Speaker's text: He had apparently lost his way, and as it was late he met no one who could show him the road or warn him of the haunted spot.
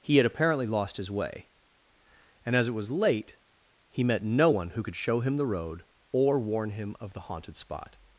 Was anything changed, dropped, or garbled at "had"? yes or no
no